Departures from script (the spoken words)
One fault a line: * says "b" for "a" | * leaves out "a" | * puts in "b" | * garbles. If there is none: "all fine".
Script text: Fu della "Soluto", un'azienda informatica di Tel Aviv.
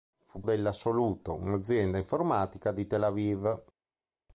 all fine